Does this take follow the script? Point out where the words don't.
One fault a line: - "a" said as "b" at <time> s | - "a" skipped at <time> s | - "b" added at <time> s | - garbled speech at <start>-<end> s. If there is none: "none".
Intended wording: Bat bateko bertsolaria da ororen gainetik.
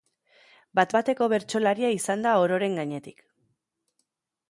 - "izan" added at 1.9 s